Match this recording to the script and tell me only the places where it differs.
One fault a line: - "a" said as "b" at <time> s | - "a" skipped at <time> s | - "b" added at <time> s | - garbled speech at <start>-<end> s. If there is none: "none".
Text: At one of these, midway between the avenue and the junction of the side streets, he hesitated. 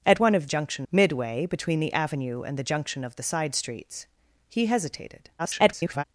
- "these" said as "junction" at 0.5 s
- garbled speech at 5.4-6.0 s